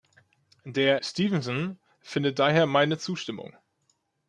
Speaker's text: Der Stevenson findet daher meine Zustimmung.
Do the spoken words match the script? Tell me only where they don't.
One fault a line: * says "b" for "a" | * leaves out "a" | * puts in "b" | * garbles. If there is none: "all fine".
all fine